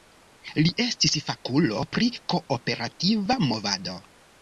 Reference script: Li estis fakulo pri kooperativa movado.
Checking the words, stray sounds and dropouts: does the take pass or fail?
pass